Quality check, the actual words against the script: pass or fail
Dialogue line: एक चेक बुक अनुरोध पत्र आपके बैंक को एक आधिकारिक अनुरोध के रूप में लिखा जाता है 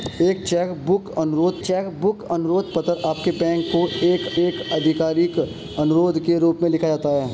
fail